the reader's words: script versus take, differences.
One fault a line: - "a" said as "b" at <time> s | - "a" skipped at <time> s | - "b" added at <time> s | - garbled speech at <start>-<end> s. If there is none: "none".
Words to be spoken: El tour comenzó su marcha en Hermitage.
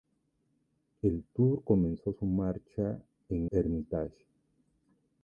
none